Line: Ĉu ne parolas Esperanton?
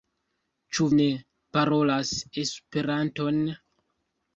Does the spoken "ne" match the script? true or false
true